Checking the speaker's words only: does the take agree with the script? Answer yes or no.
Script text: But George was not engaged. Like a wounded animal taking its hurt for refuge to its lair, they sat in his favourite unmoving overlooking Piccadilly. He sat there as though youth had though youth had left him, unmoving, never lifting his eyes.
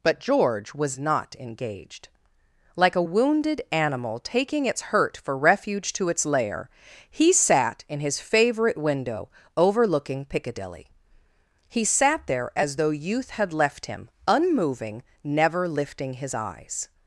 no